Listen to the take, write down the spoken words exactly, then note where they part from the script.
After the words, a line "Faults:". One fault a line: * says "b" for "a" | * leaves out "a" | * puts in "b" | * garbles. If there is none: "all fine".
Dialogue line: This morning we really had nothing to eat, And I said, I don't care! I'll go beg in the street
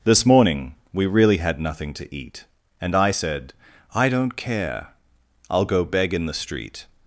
This morning we really had nothing to eat, And I said, I don't care! I'll go beg in the street
Faults:
all fine